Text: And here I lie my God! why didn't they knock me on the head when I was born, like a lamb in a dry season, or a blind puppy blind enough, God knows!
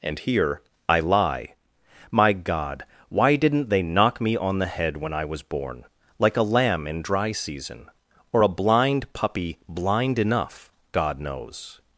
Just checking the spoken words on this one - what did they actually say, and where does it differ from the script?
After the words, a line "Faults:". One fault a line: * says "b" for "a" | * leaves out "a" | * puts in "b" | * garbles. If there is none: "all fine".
And here I lie my God! why didn't they knock me on the head when I was born, like a lamb in dry season, or a blind puppy blind enough, God knows!
Faults:
* leaves out "a"